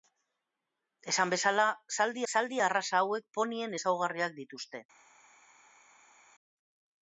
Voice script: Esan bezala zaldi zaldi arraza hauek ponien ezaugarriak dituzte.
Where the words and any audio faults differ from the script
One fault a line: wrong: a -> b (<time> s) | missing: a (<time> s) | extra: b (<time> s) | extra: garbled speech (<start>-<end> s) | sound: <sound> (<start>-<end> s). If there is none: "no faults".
no faults